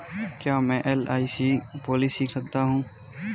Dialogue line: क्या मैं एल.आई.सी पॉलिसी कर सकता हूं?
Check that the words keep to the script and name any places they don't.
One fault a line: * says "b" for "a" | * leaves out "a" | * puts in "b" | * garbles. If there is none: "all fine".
* leaves out "कर"